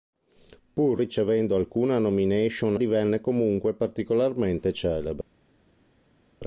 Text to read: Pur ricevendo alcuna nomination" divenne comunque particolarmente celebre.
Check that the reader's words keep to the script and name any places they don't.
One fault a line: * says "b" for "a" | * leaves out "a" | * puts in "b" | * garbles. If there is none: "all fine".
all fine